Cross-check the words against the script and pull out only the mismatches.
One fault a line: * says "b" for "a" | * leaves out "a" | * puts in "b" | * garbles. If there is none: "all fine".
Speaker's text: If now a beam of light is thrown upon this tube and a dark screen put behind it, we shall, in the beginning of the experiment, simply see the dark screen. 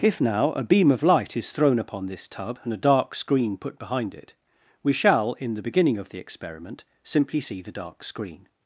* says "tub" for "tube"